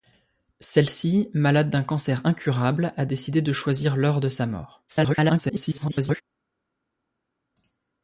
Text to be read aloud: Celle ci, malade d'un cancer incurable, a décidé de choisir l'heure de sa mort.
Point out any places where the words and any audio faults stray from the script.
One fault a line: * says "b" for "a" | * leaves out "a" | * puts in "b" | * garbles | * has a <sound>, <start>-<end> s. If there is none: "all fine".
* garbles